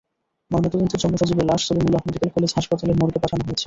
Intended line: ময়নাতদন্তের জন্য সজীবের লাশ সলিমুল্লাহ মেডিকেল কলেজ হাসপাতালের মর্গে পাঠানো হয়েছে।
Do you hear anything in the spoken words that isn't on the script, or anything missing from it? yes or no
no